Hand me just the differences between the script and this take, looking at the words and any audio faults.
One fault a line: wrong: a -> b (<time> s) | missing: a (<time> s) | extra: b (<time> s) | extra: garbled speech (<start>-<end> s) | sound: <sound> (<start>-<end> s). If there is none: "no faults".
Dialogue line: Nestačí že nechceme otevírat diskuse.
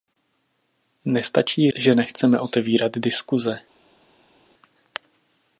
no faults